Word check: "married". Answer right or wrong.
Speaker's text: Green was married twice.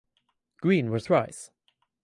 wrong